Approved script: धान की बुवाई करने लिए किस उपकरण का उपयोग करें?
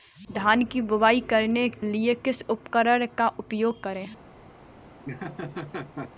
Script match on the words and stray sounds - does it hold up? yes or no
no